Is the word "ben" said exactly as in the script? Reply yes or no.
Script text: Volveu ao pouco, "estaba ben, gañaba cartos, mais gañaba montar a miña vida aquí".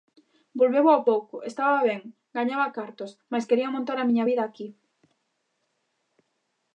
yes